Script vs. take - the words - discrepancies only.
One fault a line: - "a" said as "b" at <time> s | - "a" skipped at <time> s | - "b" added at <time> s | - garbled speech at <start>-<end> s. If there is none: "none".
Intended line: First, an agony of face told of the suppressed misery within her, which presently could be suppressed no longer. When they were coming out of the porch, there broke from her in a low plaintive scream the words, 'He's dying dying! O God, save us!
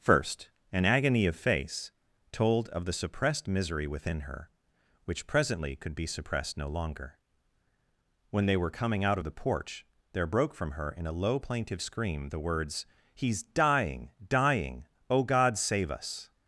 none